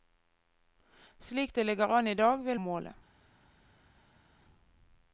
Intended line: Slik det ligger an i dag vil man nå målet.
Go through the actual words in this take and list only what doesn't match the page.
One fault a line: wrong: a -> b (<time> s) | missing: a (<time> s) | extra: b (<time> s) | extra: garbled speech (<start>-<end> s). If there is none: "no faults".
missing: man nå (2.6 s)